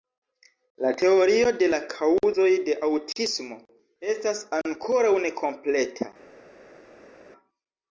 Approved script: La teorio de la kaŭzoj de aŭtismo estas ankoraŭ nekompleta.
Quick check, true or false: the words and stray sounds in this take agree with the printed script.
true